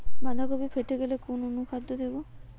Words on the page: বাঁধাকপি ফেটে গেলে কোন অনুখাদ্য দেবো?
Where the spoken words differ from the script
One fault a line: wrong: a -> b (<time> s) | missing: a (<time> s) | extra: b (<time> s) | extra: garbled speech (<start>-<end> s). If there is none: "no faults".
no faults